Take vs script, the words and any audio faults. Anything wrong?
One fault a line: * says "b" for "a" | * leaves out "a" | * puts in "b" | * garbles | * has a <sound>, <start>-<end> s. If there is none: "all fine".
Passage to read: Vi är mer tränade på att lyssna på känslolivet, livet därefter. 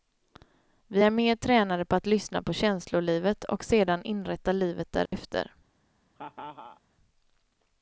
* puts in "och sedan inrätta"
* has a dropout, 5.1-5.1 s
* has a laugh, 6.2-6.8 s